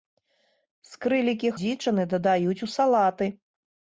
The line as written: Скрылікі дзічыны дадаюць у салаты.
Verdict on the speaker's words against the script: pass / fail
pass